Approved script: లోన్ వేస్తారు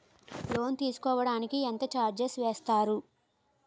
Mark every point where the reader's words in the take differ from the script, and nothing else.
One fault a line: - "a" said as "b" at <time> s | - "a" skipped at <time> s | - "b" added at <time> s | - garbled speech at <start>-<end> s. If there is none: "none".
- "తీసుకోడానికి ఎంత చార్జెస్" added at 0.8 s